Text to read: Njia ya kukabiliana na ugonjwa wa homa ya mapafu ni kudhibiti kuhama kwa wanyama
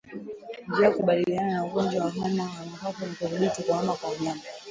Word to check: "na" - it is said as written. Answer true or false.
true